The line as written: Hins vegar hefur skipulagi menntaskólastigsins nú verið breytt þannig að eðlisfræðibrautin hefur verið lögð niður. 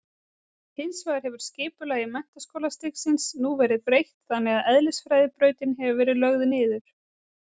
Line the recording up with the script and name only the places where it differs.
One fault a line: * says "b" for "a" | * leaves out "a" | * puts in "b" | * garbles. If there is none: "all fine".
all fine